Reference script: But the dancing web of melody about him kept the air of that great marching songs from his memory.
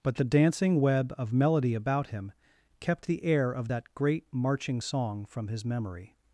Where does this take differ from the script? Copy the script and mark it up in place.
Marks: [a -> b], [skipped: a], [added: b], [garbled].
But the dancing web of melody about him kept the air of that great marching [songs -> song] from his memory.